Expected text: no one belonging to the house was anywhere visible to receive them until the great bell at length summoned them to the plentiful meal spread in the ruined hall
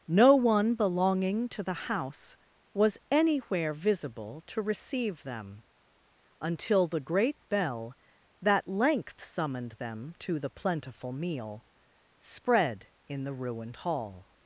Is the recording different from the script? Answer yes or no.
yes